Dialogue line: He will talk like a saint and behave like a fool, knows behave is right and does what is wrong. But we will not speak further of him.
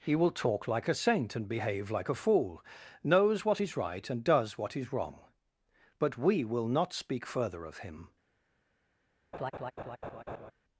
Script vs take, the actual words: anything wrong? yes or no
yes